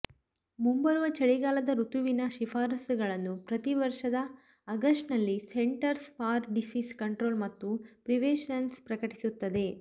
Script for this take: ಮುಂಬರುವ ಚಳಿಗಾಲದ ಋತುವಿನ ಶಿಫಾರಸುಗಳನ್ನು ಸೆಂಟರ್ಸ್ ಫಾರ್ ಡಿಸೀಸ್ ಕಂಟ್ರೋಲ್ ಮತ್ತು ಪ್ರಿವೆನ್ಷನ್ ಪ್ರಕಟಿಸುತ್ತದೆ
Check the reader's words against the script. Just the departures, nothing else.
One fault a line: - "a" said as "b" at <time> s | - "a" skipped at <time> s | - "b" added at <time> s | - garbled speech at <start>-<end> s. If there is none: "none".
- "ಪ್ರತಿ ವರ್ಷದ ಆಗಸ್ಟ್ನಲ್ಲಿ" added at 3.4 s